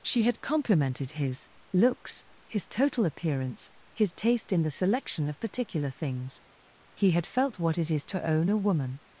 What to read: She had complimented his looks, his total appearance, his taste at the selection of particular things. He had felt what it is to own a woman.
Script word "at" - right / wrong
wrong